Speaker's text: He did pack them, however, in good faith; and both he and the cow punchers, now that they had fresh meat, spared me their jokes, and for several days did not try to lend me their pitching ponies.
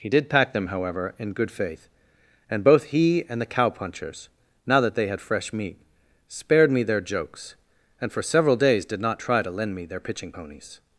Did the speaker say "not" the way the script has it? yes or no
yes